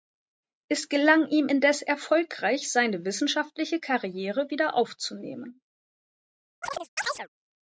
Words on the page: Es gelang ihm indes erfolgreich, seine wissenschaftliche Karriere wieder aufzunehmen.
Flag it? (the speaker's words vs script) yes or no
no